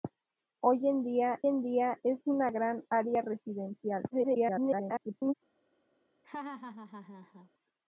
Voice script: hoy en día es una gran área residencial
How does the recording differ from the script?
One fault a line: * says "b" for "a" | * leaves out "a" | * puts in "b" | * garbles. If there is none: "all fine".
* puts in "en día"
* garbles